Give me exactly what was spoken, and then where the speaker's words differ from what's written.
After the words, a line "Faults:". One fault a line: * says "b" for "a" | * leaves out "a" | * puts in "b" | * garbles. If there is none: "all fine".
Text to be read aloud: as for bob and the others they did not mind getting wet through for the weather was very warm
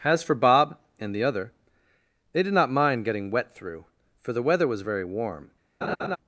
as for bob and the other they did not mind getting wet through for the weather was very warm
Faults:
* says "other" for "others"